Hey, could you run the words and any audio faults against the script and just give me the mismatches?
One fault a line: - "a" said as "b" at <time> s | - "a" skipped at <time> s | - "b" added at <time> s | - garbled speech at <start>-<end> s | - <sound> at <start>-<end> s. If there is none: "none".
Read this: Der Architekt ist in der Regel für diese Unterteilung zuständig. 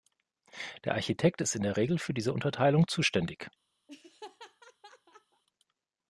- laugh at 3.9-5.4 s